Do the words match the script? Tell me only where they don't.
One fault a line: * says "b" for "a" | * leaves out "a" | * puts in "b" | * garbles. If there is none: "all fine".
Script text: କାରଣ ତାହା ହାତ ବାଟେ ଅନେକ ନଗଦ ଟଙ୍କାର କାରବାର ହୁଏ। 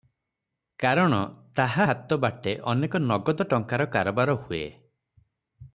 all fine